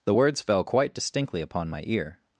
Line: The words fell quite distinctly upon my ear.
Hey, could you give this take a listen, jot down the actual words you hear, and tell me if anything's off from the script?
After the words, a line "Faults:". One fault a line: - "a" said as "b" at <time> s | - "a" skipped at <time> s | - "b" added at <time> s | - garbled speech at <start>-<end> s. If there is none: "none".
The words fell quite distinctly upon my ear.
Faults:
none